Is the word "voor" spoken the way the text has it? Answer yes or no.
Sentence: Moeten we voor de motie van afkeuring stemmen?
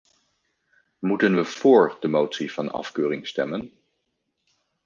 yes